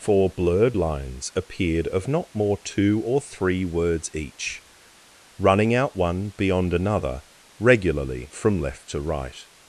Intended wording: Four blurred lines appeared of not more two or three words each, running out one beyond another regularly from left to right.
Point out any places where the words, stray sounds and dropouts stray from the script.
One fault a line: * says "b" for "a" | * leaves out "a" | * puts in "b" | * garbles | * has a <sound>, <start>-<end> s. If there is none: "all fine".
all fine